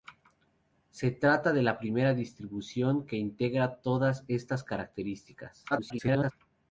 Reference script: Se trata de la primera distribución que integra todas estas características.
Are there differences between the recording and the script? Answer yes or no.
yes